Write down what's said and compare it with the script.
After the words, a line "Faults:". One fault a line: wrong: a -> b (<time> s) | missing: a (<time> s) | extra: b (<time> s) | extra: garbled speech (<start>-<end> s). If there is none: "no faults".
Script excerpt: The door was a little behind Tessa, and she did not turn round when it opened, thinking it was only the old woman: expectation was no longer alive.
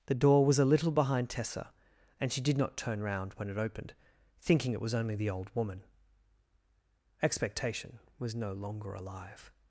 The door was a little behind Tessa, and she did not turn round when it opened, thinking it was only the old woman: expectation was no longer alive.
Faults:
no faults